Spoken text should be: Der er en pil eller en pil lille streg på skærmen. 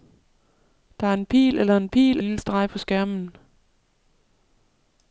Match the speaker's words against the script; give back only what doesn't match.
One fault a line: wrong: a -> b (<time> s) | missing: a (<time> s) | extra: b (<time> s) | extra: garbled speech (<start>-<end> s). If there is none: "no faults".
no faults